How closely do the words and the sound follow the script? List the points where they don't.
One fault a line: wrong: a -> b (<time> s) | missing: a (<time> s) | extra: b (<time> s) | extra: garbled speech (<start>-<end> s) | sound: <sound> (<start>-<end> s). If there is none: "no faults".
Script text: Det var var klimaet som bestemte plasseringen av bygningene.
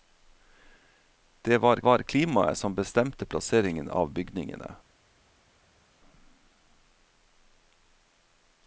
no faults